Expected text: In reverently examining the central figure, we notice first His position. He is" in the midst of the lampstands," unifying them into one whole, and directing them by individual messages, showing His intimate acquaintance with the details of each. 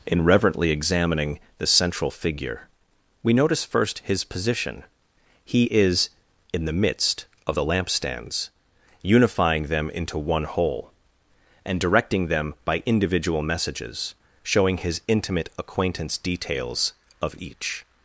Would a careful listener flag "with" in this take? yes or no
yes